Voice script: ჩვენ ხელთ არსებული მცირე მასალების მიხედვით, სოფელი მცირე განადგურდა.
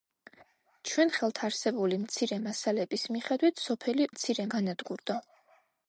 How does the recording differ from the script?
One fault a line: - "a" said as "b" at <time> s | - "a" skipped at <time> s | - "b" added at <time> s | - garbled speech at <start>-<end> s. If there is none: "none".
none